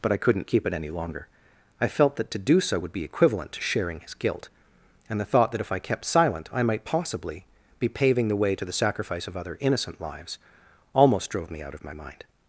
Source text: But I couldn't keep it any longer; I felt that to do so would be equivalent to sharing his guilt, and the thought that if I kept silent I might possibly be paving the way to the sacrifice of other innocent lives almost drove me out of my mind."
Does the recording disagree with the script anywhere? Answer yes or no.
no